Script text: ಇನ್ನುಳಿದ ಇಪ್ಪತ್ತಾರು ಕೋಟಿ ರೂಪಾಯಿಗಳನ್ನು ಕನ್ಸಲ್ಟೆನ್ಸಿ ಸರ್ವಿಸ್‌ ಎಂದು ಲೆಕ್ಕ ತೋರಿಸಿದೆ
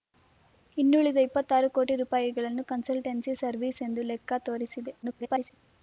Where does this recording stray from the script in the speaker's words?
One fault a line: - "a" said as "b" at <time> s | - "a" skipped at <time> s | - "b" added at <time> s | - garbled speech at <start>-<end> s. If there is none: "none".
- garbled speech at 5.0-5.5 s